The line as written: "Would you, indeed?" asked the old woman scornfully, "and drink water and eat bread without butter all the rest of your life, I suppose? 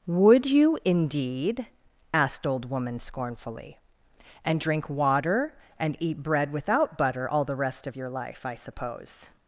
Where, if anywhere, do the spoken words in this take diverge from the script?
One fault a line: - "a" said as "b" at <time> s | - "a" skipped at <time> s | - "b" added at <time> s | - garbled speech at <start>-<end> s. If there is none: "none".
- "the" skipped at 2.5 s